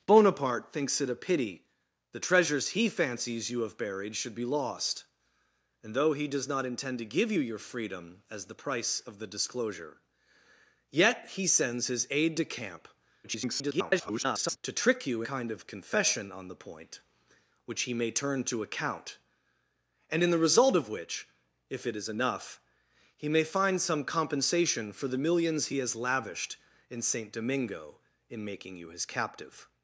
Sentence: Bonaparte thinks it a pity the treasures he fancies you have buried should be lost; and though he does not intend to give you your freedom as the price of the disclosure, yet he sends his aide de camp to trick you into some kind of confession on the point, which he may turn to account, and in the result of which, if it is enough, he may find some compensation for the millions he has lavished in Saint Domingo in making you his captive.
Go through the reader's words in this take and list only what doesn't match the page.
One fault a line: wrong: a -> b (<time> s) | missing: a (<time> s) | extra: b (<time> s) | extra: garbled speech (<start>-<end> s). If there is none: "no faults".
extra: garbled speech (13.2-14.6 s)
missing: into some (15.2 s)